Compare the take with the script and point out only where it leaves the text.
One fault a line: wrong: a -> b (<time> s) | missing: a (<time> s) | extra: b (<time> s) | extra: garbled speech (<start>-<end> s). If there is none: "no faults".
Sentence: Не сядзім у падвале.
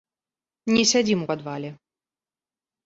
no faults